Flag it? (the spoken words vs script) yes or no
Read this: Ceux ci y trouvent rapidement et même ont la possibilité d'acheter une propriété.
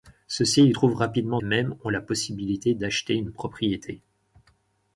no